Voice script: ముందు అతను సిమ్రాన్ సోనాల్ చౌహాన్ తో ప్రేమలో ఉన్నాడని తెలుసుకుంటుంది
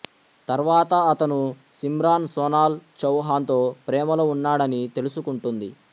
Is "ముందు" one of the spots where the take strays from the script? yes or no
yes